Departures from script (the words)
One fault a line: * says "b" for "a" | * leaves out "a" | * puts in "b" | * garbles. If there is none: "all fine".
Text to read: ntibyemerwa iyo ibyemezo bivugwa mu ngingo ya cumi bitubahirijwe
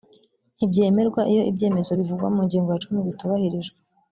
all fine